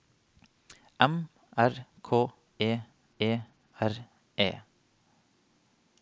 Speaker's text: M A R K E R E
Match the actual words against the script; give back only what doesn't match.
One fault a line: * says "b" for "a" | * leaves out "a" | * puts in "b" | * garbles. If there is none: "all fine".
* leaves out "A"
* puts in "E"